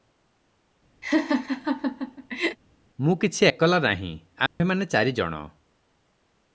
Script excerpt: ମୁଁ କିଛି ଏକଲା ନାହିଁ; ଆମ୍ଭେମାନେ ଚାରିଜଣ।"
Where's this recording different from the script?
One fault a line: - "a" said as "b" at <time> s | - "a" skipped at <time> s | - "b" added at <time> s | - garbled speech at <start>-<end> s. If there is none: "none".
none